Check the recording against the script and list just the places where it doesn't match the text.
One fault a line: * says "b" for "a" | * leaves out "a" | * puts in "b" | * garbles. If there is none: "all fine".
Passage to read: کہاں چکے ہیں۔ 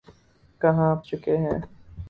all fine